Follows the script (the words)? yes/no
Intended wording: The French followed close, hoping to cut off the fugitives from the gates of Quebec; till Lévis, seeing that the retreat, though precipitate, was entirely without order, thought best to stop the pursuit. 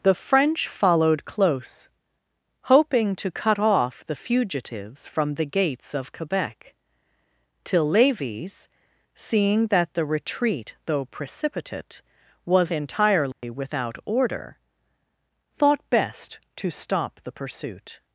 yes